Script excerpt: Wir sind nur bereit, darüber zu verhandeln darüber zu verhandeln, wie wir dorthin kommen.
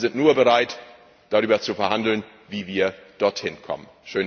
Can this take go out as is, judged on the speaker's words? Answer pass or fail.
fail